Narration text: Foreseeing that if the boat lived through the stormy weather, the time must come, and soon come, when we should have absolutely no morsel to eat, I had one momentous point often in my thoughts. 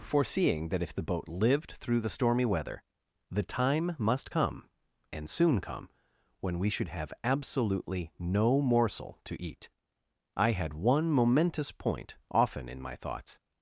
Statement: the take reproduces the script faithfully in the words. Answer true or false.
true